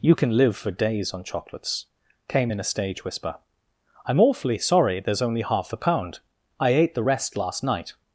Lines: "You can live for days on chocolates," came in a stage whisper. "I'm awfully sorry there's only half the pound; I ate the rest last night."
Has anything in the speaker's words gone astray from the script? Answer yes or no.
no